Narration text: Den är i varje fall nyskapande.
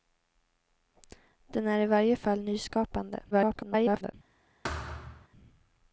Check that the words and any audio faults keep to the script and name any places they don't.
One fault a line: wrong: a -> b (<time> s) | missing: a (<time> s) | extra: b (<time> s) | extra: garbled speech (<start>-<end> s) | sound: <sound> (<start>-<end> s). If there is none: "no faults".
extra: garbled speech (3.3-4.1 s)
sound: thud (4.6-5.3 s)